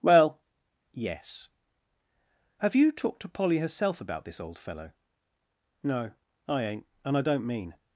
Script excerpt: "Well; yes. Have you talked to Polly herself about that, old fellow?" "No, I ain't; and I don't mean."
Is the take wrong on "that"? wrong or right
wrong